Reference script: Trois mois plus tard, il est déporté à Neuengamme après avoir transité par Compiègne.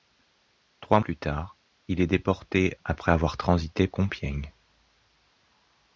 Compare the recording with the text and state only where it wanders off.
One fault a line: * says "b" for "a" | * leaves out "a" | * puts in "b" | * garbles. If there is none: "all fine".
* leaves out "mois"
* leaves out "à Neuengamme"
* leaves out "par"